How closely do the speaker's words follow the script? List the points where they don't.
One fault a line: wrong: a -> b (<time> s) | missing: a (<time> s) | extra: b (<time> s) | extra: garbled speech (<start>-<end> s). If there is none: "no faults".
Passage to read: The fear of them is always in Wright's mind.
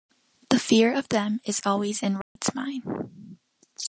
no faults